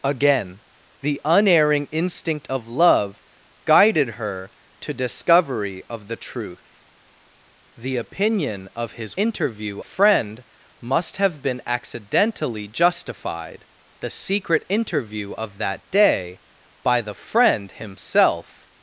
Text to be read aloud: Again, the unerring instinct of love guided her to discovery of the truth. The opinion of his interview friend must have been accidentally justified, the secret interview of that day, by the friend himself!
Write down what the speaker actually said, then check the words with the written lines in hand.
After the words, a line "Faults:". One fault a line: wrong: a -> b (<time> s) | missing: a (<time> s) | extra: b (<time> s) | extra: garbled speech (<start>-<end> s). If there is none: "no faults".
Again, the unerring instinct of love guided her to discovery of the truth. The opinion of his interview friend must have been accidentally justified, the secret interview of that day, by the friend himself!
Faults:
no faults